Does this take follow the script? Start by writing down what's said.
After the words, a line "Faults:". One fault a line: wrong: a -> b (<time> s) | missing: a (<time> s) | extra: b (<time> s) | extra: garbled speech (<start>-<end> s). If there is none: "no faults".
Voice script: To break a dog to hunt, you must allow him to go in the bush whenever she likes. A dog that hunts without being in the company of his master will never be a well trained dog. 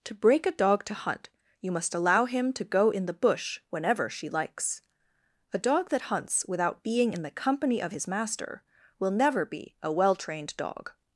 To break a dog to hunt, you must allow him to go in the bush whenever she likes. A dog that hunts without being in the company of his master will never be a well trained dog.
Faults:
no faults